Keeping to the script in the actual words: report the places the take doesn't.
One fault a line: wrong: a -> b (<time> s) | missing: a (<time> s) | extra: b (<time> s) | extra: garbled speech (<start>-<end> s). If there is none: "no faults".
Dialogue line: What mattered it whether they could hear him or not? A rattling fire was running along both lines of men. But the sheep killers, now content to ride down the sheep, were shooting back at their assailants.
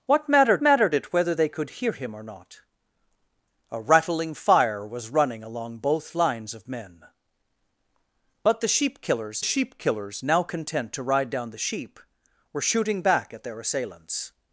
extra: mattered (0.6 s)
extra: sheep killers (9.4 s)